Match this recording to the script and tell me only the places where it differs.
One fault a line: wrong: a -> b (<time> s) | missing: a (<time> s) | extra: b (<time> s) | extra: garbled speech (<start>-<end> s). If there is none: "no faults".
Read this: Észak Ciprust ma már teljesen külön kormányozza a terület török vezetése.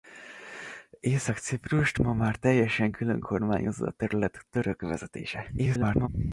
extra: garbled speech (5.6-6.1 s)